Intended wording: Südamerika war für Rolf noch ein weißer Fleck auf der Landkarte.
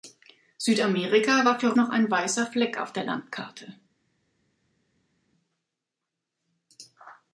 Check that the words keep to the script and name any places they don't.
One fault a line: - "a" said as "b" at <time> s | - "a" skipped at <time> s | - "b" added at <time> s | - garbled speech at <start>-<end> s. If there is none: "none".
- "Rolf" skipped at 1.7 s